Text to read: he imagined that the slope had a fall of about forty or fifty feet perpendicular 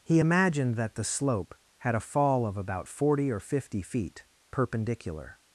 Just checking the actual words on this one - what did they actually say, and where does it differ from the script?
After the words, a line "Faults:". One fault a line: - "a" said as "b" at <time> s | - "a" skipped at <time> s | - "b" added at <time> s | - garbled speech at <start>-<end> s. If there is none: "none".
he imagined that the slope had a fall of about forty or fifty feet perpendicular
Faults:
none